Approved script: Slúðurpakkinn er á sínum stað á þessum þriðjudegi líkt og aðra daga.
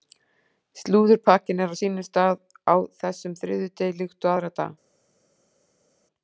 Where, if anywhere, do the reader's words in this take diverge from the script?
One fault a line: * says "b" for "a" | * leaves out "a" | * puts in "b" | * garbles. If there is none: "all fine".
all fine